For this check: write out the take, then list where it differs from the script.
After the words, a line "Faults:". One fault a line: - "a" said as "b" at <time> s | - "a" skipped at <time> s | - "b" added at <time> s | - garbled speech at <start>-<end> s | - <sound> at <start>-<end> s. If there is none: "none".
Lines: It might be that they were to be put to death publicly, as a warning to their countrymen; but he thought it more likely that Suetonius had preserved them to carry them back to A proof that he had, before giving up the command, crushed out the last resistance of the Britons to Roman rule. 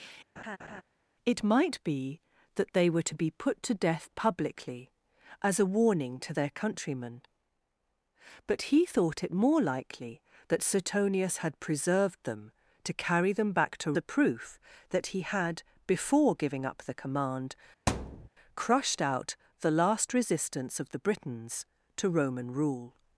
It might be that they were to be put to death publicly, as a warning to their countrymen; but he thought it more likely that Suetonius had preserved them to carry them back to A proof that he had, before giving up the command, crushed out the last resistance of the Britons to Roman rule.
Faults:
- laugh at 0.4-0.8 s
- thud at 17.9-18.3 s